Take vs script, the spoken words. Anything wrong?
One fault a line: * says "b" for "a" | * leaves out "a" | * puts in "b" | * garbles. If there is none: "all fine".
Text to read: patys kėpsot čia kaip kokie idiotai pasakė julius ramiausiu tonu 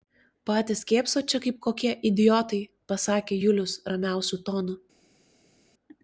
all fine